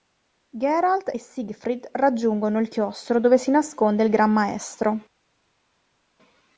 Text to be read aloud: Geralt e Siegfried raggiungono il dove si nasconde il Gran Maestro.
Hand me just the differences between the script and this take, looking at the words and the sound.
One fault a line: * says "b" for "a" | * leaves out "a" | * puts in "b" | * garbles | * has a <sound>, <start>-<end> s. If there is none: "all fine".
* puts in "chiostro"